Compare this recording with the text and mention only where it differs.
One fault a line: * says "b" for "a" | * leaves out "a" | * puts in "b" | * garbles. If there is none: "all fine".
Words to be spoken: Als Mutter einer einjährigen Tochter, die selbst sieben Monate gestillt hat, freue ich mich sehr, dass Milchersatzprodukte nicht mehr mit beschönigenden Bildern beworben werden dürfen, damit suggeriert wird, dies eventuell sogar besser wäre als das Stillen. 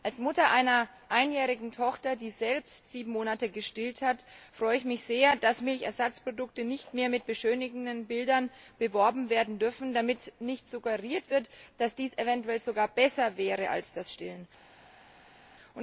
* puts in "nicht"
* puts in "dass"